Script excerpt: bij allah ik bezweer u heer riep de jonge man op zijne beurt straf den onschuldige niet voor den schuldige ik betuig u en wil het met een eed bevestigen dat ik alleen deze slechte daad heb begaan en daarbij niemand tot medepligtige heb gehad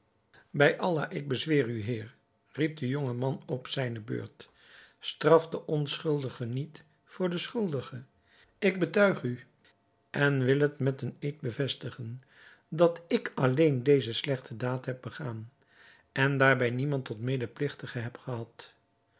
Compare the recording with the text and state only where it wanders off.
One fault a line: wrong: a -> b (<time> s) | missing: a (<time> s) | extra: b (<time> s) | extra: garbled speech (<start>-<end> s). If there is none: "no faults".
no faults